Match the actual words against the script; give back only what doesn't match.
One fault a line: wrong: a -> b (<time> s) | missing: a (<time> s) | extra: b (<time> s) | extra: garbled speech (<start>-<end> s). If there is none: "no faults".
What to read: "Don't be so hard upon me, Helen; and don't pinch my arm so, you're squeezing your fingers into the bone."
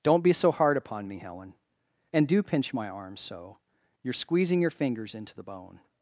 wrong: don't -> do (2.3 s)